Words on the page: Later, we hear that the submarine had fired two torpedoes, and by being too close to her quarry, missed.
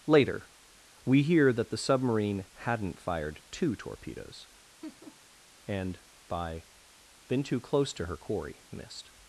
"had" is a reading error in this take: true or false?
true